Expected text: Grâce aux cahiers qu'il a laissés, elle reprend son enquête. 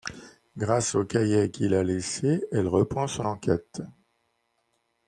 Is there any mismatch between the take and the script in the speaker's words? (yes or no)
no